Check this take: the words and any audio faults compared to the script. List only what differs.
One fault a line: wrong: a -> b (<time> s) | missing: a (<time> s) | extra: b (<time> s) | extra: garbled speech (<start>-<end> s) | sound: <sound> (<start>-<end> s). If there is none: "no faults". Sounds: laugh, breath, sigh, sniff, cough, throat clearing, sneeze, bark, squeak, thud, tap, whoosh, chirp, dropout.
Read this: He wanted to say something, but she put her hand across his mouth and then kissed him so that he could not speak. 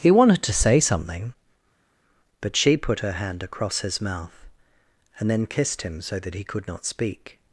no faults